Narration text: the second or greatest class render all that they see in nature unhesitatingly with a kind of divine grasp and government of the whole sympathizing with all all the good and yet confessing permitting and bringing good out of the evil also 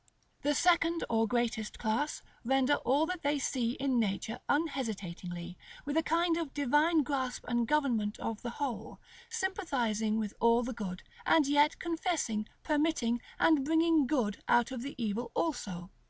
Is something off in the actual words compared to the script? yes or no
yes